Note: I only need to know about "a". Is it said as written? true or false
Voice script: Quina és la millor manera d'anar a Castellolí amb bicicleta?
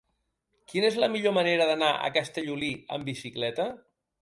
true